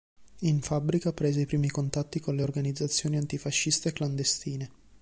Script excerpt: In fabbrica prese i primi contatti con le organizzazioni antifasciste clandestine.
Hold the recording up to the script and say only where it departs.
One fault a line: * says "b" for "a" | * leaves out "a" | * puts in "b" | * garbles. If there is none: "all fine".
all fine